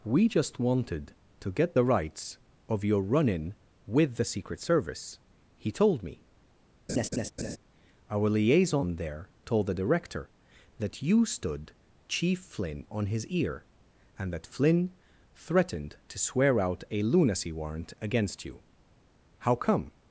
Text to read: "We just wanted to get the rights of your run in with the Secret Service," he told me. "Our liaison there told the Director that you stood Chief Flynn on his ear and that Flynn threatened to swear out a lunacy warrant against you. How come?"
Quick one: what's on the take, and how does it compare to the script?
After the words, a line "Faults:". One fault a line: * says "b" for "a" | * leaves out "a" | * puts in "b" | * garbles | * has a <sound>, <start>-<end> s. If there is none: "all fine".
"We just wanted to get the rights of your run in with the Secret Service," he told me. "Our liaison there told the Director that you stood Chief Flynn on his ear and that Flynn threatened to swear out a lunacy warrant against you. How come?"
Faults:
* has a laugh, 6.9-7.6 s